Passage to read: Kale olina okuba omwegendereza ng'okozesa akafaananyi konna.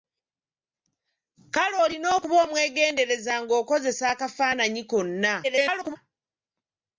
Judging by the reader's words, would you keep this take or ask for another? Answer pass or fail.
fail